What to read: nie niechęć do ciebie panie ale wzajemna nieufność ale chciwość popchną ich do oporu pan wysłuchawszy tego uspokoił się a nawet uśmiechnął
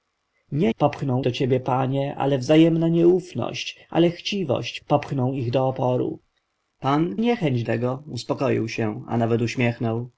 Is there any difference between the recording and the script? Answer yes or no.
yes